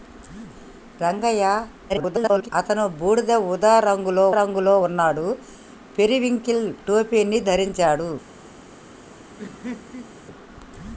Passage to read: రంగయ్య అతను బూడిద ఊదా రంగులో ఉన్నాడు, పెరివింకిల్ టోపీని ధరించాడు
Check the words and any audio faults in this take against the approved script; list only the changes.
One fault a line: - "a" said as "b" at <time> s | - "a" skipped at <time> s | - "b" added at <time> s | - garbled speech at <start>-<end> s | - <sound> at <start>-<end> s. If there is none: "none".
- garbled speech at 1.9-2.5 s
- "రంగులో" added at 4.4 s
- laugh at 9.4-10.2 s